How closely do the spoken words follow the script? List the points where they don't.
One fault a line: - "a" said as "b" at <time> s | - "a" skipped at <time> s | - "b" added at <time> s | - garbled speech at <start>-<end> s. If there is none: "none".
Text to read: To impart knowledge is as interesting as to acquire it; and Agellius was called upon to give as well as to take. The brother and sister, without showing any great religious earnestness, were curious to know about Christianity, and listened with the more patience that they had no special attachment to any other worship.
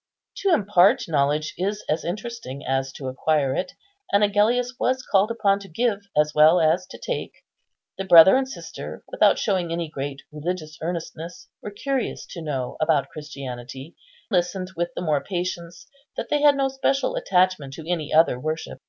- "and" skipped at 13.9 s